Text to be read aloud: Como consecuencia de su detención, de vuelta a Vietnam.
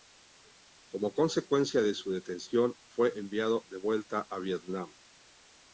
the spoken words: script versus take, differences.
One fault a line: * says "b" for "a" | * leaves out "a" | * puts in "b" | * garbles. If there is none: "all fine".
* puts in "fue enviado"